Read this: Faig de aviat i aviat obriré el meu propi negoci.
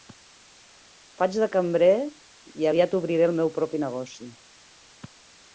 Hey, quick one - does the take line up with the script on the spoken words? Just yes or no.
no